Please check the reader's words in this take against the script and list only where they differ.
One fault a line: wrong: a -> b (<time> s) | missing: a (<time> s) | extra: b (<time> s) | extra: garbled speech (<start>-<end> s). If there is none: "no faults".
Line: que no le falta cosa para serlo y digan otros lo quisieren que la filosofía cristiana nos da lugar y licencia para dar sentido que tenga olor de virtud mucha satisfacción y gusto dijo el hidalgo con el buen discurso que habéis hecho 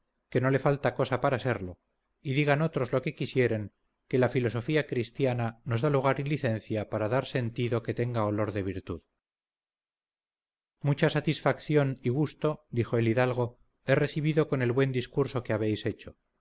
extra: que (3.0 s)
extra: he recibido (13.8 s)